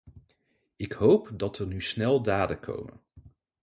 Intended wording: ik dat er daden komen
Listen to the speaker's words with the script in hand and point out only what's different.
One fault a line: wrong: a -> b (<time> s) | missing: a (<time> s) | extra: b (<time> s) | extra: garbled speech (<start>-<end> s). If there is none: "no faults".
extra: hoop (0.9 s)
extra: nu snel (1.7 s)